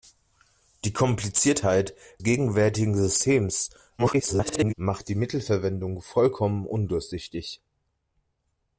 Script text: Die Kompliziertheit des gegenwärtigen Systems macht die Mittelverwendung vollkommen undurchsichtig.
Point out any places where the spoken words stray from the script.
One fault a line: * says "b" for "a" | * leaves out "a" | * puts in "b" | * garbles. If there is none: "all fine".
* leaves out "des"
* garbles